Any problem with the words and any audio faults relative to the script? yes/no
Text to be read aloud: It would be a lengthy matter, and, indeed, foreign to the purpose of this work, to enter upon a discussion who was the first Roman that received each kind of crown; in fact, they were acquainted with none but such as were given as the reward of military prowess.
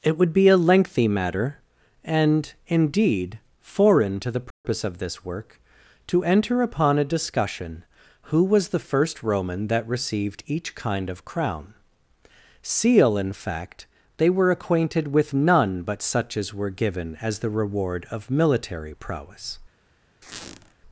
yes